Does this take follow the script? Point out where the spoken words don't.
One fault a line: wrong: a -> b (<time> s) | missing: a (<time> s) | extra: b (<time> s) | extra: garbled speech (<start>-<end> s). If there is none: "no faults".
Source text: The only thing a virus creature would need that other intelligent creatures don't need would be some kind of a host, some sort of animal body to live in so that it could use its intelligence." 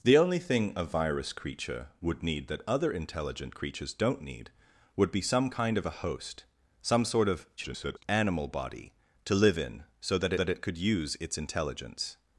extra: garbled speech (7.6-8.0 s)
extra: that (10.3 s)